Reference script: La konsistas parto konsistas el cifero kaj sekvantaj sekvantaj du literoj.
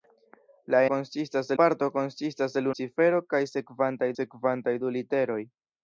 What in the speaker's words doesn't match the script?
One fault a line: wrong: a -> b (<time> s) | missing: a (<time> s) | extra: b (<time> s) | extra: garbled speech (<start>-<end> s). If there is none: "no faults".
no faults